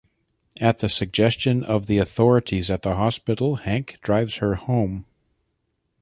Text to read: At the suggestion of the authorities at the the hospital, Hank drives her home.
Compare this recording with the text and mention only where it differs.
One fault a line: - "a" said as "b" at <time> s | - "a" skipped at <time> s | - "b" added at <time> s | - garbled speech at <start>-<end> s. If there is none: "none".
- "the" skipped at 3.0 s